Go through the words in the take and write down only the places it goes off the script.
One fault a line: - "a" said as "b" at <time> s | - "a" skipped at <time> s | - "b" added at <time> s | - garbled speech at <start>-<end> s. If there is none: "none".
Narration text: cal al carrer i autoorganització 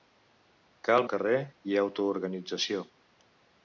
none